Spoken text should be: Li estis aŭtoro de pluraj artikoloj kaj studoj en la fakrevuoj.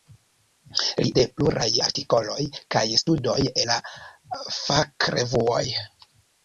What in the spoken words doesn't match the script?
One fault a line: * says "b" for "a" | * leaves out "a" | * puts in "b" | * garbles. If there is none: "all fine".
* leaves out "estis aŭtoro"
* leaves out "en"